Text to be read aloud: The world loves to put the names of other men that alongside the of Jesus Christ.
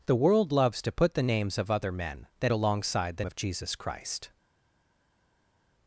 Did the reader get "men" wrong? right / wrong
right